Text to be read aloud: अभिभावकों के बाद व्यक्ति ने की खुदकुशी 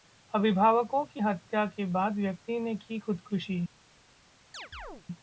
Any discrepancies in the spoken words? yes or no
yes